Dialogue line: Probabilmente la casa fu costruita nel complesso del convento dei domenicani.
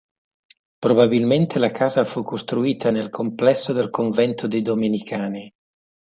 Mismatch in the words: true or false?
false